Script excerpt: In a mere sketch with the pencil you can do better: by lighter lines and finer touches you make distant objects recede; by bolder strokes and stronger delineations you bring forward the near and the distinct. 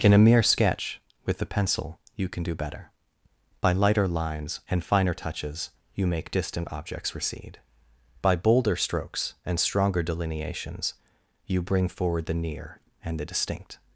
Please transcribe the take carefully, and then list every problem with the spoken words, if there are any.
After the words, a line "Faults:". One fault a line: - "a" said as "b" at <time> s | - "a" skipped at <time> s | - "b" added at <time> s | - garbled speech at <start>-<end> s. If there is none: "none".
In a mere sketch with the pencil you can do better: by lighter lines and finer touches you make distant objects recede; by bolder strokes and stronger delineations you bring forward the near and the distinct.
Faults:
none